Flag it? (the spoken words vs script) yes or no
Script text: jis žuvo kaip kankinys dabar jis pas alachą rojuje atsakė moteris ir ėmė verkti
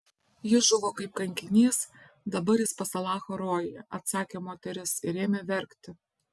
no